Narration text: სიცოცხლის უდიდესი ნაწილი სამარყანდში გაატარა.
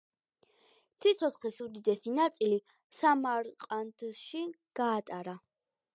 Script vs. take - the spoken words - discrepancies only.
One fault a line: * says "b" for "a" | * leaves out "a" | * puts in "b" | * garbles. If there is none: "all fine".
all fine